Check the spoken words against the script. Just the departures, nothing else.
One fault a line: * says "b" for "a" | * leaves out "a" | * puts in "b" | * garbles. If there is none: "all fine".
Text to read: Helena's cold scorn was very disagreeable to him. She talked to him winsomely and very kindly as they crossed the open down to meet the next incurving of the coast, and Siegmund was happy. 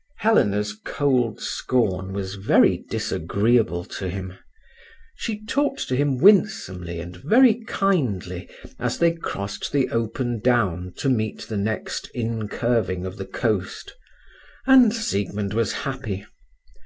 all fine